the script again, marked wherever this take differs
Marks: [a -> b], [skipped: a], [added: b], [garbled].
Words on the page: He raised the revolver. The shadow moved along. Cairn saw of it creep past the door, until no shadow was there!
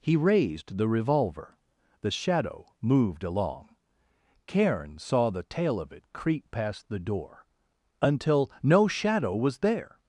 He raised the revolver. The shadow moved along. Cairn saw [added: the tail] of it creep past the door, until no shadow was there!